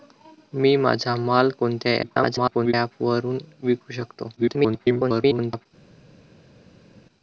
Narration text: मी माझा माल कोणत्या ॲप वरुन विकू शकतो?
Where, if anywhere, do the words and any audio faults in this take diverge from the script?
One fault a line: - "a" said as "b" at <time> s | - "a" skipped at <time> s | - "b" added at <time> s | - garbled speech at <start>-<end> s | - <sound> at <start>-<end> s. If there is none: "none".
- garbled speech at 2.0-2.7 s
- garbled speech at 4.4-5.7 s